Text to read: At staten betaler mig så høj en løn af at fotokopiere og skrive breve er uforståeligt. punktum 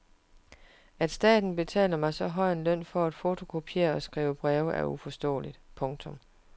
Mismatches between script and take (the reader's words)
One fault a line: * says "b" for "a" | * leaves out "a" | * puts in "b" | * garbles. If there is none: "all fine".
* says "for" for "af"